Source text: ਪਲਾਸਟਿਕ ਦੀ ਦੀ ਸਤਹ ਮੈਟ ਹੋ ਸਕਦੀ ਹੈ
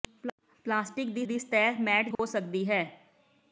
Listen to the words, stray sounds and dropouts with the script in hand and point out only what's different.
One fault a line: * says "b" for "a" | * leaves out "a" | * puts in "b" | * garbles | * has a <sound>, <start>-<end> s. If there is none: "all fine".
* has a dropout, 2.2-2.2 s